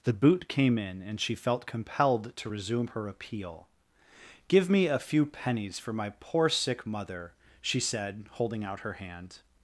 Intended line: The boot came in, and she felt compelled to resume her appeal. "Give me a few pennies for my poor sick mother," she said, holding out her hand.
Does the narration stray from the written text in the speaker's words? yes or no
no